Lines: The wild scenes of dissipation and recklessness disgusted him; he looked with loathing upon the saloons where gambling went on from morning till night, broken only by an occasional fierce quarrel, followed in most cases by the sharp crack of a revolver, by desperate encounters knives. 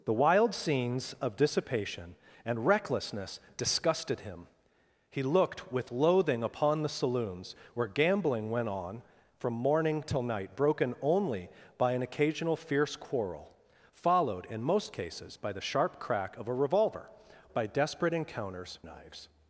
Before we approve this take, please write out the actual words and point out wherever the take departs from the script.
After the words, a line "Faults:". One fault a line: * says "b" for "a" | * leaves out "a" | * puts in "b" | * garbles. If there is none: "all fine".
The wild scenes of dissipation and recklessness disgusted him; he looked with loathing upon the saloons where gambling went on from morning till night, broken only by an occasional fierce quarrel, followed in most cases by the sharp crack of a revolver, by desperate encounters knives.
Faults:
all fine